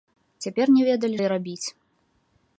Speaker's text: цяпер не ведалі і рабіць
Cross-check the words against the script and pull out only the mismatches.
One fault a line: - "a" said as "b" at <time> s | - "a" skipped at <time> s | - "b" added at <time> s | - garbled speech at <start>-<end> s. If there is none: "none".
none